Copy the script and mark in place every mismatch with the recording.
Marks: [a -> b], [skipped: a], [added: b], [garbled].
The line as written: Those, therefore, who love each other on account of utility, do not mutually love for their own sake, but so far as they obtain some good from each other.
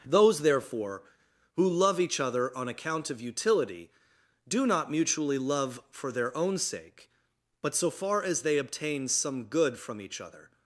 Those, therefore, who love each other on account of utility, do not mutually love for their own sake, but so far as they obtain some good from each other.